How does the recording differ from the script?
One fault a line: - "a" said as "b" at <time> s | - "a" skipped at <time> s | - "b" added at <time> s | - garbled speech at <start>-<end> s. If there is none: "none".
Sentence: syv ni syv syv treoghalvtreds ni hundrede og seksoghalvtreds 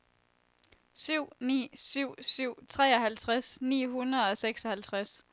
none